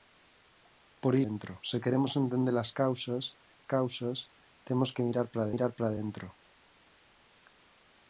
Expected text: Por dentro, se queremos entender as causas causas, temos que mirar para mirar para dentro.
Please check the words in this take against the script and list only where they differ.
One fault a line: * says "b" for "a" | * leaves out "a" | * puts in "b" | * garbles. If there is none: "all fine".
all fine